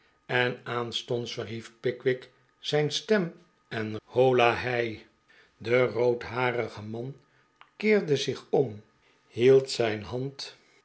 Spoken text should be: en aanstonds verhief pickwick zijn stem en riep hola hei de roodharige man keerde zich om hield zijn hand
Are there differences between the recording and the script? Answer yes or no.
yes